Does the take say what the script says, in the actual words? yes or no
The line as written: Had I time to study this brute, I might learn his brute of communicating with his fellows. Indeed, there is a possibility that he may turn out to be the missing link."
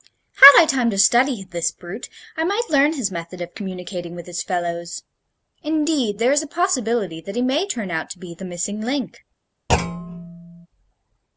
no